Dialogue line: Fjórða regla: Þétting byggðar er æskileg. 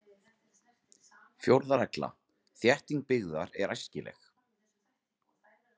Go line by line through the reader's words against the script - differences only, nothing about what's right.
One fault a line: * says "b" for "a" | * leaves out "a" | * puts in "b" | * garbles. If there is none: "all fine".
all fine